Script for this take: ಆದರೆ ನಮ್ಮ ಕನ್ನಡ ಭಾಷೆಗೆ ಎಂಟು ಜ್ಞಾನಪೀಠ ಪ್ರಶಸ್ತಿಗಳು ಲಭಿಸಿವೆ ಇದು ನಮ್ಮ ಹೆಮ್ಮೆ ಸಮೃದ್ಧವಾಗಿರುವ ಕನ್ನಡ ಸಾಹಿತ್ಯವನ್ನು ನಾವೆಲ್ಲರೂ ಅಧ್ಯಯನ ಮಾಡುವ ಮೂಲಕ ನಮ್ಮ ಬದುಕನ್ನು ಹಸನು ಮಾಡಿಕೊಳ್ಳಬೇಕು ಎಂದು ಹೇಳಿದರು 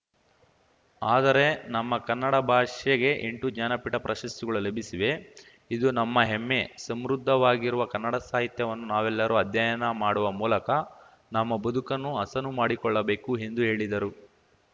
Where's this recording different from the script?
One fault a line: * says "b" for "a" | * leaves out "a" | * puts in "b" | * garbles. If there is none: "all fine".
all fine